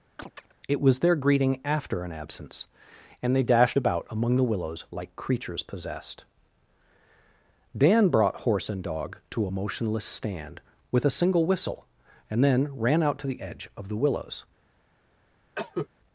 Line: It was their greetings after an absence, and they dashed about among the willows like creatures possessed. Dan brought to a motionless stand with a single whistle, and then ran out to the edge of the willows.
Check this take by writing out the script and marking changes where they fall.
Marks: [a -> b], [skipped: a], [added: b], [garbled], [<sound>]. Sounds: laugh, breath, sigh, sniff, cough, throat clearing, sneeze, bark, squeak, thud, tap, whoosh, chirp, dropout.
[chirp] It was their [greetings -> greeting] after an absence, and they dashed about among the willows like creatures possessed. Dan brought [added: horse and dog] to a motionless stand with a single whistle, and then ran out to the edge of the willows. [cough]